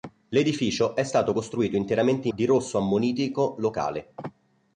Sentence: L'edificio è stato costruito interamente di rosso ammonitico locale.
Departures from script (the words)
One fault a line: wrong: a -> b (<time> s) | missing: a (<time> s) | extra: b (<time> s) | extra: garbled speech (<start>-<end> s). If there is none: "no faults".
no faults